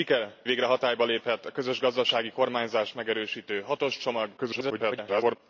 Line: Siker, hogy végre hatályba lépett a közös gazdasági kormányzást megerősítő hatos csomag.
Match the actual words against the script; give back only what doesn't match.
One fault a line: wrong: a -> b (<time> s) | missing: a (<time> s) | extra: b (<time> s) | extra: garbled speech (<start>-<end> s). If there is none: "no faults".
missing: hogy (0.3 s)
extra: garbled speech (4.4-5.4 s)